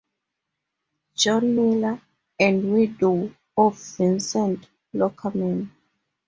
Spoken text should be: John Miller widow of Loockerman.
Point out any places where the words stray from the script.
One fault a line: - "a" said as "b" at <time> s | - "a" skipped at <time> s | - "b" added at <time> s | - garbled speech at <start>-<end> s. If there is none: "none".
- "and" added at 2.4 s
- "Vincent" added at 4.0 s